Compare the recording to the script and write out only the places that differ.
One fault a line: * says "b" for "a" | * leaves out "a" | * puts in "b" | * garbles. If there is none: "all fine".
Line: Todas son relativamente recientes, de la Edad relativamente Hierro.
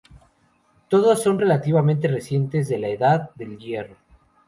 * says "del" for "relativamente"